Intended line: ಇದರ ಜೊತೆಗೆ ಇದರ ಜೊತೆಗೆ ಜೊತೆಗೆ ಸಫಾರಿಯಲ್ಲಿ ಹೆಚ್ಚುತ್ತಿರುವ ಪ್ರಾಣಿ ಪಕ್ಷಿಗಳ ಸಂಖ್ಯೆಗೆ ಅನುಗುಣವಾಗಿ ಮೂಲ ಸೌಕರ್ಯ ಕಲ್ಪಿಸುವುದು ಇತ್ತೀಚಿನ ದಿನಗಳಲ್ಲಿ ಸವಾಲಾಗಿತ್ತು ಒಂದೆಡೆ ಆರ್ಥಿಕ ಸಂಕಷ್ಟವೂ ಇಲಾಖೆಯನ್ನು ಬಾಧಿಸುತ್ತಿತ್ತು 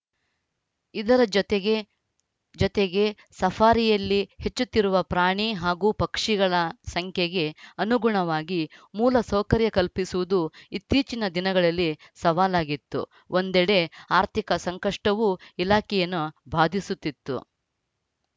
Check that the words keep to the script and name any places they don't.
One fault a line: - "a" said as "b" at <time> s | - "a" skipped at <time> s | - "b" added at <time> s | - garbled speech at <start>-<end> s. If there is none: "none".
- "ಇದರ" skipped at 1.7 s
- "ಜೊತೆಗೆ" skipped at 3.0 s
- "ಹಾಗೂ" added at 5.5 s